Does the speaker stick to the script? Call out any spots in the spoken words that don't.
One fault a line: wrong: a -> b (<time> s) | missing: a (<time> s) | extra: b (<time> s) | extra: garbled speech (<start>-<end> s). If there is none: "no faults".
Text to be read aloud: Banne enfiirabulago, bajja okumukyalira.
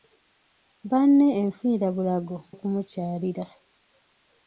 missing: bajja (2.4 s)